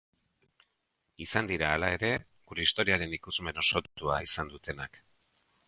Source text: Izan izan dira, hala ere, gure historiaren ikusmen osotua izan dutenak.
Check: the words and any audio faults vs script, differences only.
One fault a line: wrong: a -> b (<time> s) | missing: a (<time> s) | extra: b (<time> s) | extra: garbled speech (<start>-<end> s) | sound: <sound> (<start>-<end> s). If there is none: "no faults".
missing: izan (1.5 s)